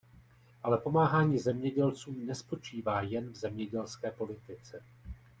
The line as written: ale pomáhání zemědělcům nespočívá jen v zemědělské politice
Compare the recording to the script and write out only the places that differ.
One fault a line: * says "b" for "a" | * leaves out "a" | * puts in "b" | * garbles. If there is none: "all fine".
all fine